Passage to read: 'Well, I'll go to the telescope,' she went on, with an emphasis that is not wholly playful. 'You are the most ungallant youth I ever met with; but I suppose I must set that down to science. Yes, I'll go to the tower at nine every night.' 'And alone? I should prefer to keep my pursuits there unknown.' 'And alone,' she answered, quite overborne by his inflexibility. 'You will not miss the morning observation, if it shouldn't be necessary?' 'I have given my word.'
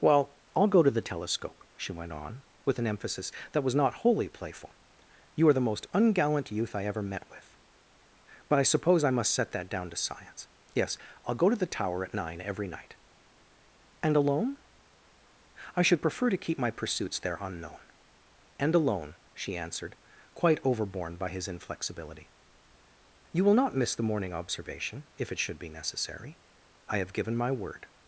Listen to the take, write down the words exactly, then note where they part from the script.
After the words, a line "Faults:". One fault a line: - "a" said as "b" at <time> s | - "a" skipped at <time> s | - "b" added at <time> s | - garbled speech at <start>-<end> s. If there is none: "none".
'Well, I'll go to the telescope,' she went on, with an emphasis that was not wholly playful. 'You are the most ungallant youth I ever met with; but I suppose I must set that down to science. Yes, I'll go to the tower at nine every night.' 'And alone? I should prefer to keep my pursuits there unknown.' 'And alone,' she answered, quite overborne by his inflexibility. 'You will not miss the morning observation, if it should be necessary?' 'I have given my word.'
Faults:
- "is" said as "was" at 3.6 s
- "shouldn't" said as "should" at 25.4 s